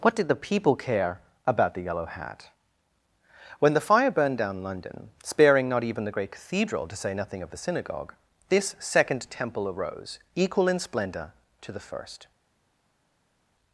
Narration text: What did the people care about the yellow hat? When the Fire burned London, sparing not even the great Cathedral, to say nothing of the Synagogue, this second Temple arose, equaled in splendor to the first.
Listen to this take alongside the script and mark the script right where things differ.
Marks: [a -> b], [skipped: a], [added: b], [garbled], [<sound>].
What did the people care about the yellow hat? When the Fire burned [added: down] London, sparing not even the great Cathedral, to say nothing of the Synagogue, this second Temple arose, [equaled -> equal] in splendor to the first.